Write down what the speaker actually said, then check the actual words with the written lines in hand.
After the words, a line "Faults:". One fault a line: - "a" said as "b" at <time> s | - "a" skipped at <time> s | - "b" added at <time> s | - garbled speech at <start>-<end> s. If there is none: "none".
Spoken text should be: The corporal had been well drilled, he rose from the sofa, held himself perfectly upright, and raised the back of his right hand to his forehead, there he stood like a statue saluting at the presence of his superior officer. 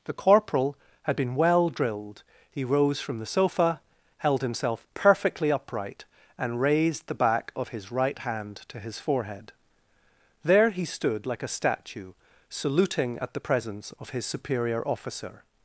The corporal had been well drilled, he rose from the sofa, held himself perfectly upright, and raised the back of his right hand to his forehead, there he stood like a statue saluting at the presence of his superior officer.
Faults:
none